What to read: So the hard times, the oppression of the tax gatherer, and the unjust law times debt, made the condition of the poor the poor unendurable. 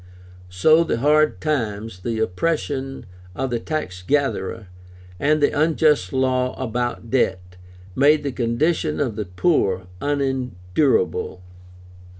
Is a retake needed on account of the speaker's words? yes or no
yes